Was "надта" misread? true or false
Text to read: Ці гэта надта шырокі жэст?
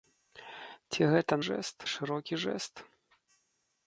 true